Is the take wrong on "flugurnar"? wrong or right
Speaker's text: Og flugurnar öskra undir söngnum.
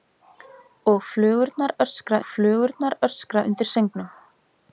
right